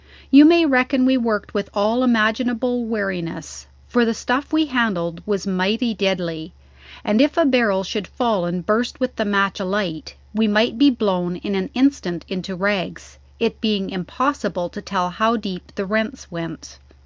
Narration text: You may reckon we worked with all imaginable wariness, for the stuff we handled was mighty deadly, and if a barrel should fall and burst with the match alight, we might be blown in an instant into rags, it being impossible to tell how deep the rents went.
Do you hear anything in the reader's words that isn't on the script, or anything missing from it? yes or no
no